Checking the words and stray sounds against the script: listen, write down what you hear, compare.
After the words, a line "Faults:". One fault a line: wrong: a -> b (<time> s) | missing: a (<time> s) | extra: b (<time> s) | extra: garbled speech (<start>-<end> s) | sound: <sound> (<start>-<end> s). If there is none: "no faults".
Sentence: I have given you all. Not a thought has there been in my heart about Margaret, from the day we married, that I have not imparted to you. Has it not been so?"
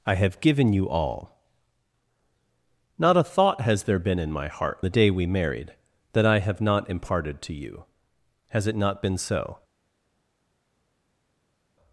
I have given you all. Not a thought has there been in my heart the day we married, that I have not imparted to you. Has it not been so?"
Faults:
missing: about Margaret from (4.8 s)